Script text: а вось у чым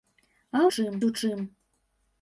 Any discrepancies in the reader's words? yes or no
yes